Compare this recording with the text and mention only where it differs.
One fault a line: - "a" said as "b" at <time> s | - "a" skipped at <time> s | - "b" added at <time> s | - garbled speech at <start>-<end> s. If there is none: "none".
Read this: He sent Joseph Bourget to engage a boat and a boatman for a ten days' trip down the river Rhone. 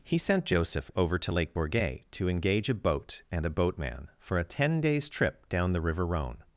- "over to Lake" added at 0.9 s